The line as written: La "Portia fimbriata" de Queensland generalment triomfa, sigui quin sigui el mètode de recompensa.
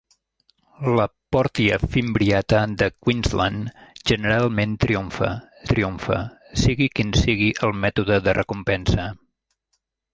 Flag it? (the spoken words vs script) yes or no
yes